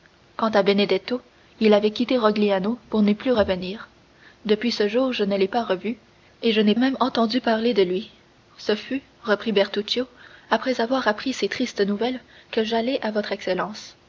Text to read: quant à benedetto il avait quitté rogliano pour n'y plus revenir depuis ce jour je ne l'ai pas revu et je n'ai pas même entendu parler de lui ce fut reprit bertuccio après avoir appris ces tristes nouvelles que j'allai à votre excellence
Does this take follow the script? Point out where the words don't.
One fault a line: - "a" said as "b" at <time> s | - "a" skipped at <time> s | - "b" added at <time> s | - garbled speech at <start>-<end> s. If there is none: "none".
- "pas" skipped at 6.7 s